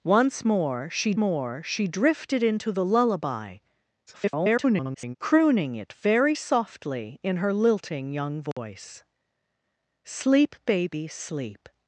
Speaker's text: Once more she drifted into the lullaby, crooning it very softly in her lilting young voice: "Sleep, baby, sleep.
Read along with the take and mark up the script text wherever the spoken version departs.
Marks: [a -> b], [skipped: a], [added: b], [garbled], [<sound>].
Once more she [added: more she] drifted into the lullaby, [garbled] crooning it very softly in her lilting young voice: [dropout] "Sleep, baby, sleep.